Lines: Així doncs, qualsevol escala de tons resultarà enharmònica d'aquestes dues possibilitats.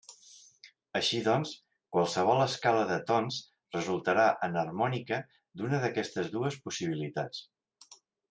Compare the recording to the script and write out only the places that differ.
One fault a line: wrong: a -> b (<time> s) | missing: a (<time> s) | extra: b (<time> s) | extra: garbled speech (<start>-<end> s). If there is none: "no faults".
extra: d'una (5.6 s)